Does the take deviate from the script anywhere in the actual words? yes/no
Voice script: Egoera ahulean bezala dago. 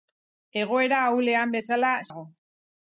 no